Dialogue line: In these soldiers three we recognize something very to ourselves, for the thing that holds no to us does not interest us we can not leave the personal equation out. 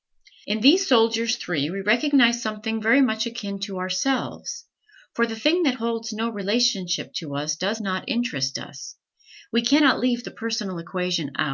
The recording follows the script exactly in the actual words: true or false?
false